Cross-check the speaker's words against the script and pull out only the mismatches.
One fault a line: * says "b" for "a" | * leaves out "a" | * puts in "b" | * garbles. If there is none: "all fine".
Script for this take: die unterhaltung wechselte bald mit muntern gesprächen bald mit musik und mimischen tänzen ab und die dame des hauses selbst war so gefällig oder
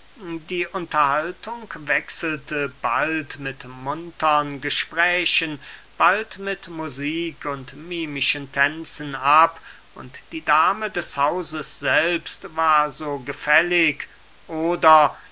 all fine